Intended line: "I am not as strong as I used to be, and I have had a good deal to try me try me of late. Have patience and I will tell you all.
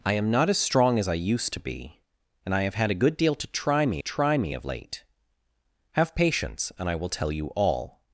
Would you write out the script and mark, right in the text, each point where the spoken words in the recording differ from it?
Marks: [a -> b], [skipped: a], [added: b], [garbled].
"I am not as strong as I used to be, and I have had a good deal to try me try me of late. Have patience and I will tell you all.